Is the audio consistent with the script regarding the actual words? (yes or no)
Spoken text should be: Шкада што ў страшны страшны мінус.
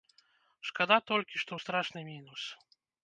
no